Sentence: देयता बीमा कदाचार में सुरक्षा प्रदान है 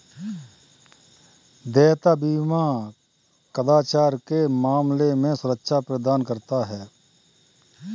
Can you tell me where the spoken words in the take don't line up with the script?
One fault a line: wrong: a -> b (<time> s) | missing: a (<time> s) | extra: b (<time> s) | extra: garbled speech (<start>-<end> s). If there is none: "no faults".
extra: के मामले (4.3 s)
extra: करता (6.2 s)